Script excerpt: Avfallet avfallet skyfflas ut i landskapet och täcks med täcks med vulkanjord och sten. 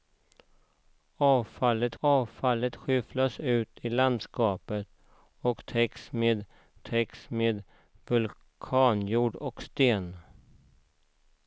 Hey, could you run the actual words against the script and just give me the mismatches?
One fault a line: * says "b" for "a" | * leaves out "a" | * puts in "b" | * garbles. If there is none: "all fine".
all fine